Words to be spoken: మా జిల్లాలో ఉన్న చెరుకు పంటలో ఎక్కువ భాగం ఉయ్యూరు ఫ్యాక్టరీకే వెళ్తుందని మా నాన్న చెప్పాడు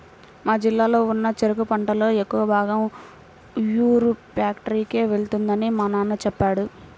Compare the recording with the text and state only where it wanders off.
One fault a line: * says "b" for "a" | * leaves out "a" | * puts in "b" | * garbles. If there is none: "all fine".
all fine